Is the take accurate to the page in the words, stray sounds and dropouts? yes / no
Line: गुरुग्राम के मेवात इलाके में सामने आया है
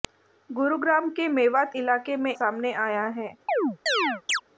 no